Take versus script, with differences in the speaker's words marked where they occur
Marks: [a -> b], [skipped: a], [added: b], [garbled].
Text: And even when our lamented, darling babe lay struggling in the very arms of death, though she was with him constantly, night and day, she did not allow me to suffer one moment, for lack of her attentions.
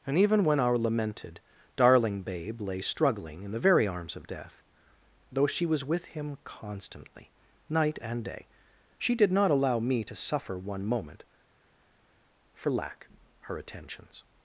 And even when our lamented, darling babe lay struggling in the very arms of death, though she was with him constantly, night and day, she did not allow me to suffer one moment, for lack [skipped: of] her attentions.